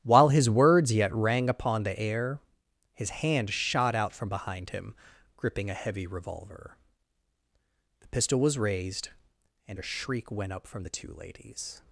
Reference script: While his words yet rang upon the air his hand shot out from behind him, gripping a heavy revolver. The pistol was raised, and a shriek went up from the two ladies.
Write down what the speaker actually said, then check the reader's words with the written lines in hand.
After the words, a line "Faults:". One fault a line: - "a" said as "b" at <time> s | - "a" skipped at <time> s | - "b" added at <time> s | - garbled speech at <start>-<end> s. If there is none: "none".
While his words yet rang upon the air his hand shot out from behind him, gripping a heavy revolver. The pistol was raised, and a shriek went up from the two ladies.
Faults:
none